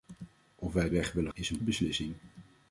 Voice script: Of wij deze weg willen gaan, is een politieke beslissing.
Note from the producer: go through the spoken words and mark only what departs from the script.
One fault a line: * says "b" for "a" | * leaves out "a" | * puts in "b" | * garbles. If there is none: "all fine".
* leaves out "deze"
* leaves out "gaan"
* leaves out "politieke"